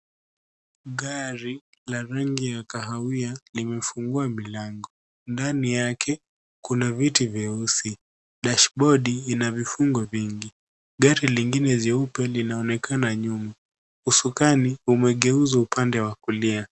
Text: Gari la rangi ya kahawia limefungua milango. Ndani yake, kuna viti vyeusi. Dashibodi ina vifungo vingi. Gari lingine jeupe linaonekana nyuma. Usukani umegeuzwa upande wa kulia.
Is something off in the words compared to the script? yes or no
no